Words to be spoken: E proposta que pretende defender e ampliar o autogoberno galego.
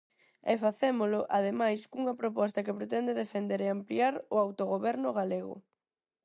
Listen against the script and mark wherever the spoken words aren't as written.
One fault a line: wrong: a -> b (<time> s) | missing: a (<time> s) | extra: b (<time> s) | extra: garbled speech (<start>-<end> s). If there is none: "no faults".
extra: facémolo ademais cunha (0.7 s)